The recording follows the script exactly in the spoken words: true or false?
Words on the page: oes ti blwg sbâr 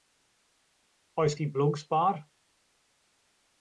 true